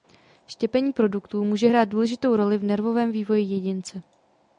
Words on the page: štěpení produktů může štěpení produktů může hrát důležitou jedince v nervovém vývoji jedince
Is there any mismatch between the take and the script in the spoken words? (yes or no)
yes